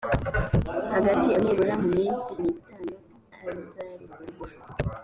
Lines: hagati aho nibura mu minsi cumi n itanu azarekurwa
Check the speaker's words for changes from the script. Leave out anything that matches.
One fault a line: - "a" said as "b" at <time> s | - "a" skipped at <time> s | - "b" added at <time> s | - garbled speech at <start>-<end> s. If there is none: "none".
- "aho" skipped at 1.3 s
- "cumi" skipped at 2.3 s